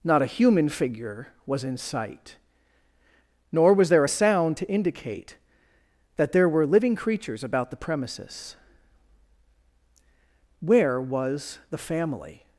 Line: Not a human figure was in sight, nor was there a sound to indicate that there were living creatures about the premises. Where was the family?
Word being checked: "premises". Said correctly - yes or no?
yes